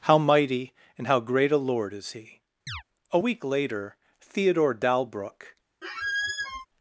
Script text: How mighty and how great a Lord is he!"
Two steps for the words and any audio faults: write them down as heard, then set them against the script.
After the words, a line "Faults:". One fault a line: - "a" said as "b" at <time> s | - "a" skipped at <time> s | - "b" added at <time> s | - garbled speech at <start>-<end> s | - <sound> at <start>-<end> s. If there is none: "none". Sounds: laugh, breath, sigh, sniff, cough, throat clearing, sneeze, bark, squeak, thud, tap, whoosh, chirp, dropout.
How mighty and how great a Lord is he!" A week later Theodore Dalbrook
Faults:
- chirp at 2.7-2.8 s
- "A week later Theodore Dalbrook" added at 3.1 s
- squeak at 5.8-6.7 s